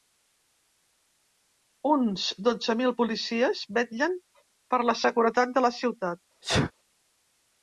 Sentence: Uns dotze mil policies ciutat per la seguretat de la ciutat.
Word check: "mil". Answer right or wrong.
right